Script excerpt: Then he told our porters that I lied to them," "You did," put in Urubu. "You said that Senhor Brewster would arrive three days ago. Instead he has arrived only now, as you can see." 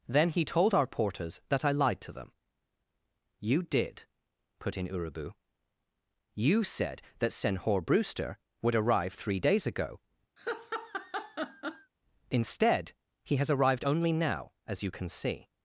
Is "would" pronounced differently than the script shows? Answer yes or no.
no